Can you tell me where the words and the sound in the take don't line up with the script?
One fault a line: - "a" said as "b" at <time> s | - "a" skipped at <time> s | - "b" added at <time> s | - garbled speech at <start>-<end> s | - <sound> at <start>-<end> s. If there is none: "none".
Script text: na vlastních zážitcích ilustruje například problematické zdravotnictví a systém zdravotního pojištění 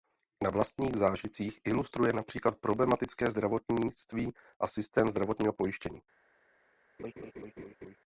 - laugh at 7.0-8.0 s